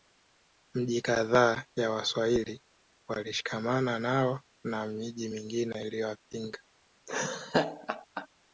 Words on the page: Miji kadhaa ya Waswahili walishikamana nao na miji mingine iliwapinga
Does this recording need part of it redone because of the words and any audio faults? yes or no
yes